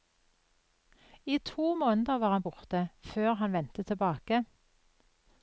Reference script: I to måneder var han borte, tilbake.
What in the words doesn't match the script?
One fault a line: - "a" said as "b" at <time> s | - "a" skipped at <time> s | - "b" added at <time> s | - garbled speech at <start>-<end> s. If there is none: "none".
- "før han vendte" added at 3.0 s